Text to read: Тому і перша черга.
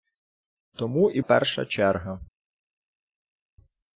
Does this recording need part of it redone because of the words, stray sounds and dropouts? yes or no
no